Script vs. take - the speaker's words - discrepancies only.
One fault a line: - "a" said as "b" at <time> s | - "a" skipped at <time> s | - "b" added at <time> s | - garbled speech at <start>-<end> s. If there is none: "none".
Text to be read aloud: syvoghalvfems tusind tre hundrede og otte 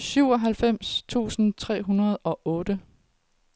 none